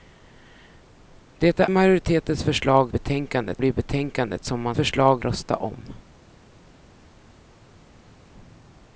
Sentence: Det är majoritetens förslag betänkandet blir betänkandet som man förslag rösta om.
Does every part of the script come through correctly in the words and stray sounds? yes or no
yes